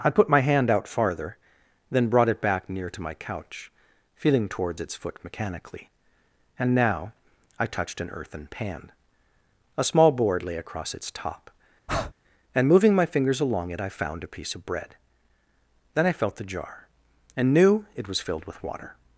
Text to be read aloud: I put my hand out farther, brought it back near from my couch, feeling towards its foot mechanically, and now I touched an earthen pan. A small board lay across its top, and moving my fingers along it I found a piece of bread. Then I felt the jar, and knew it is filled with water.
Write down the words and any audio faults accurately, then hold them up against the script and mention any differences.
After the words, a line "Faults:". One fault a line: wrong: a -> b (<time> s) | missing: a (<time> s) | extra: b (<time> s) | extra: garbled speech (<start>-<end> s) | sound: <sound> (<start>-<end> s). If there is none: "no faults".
I put my hand out farther, then brought it back near to my couch, feeling towards its foot mechanically, and now I touched an earthen pan. A small board lay across its top, and moving my fingers along it I found a piece of bread. Then I felt the jar, and knew it was filled with water.
Faults:
extra: then (1.9 s)
wrong: from -> to (2.9 s)
sound: breath (11.9-12.1 s)
wrong: is -> was (18.1 s)